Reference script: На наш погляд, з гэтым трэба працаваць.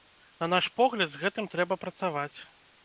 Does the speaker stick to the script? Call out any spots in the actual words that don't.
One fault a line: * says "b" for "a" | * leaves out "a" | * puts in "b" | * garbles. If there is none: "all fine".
all fine